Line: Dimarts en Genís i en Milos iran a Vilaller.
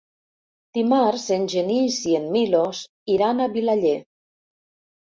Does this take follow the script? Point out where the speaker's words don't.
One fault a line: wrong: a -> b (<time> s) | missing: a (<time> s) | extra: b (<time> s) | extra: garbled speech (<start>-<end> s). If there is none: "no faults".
no faults